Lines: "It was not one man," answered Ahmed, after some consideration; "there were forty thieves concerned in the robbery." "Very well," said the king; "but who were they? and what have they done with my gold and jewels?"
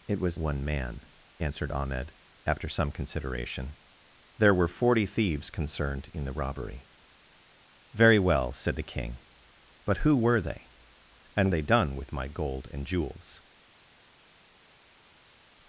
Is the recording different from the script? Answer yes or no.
yes